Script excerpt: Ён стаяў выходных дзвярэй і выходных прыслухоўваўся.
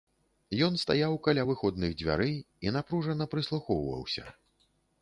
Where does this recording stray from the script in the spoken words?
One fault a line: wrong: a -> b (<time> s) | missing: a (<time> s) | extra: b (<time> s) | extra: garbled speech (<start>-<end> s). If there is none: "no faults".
extra: каля (1.3 s)
wrong: выходных -> напружана (2.8 s)